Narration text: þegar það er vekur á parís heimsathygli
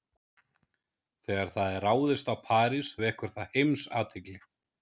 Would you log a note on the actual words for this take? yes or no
yes